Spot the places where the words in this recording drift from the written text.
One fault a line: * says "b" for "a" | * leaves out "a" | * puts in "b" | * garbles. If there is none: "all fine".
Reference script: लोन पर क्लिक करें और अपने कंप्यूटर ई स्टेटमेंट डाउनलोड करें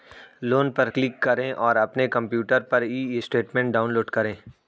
* puts in "पर"